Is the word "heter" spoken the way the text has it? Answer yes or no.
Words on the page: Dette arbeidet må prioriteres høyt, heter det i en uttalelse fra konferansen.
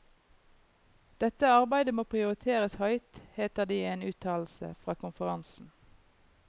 yes